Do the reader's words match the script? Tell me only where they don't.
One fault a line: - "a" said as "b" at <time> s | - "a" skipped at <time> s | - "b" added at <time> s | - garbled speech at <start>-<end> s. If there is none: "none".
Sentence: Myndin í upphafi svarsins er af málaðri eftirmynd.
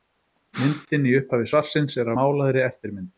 - "af" skipped at 2.1 s